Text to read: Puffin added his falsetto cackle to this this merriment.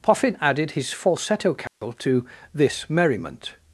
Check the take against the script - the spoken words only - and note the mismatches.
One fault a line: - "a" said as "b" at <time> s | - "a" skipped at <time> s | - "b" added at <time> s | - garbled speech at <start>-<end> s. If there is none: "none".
- "this" skipped at 2.9 s